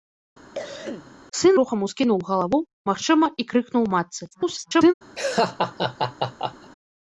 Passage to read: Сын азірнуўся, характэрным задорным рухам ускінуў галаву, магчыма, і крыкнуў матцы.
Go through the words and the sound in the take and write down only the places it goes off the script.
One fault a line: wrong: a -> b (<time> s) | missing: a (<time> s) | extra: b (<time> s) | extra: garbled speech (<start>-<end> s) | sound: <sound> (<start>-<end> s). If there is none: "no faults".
sound: cough (0.5-1.1 s)
missing: азірнуўся характэрным задорным (1.6 s)
extra: garbled speech (4.3-4.9 s)
sound: laugh (5.2-6.7 s)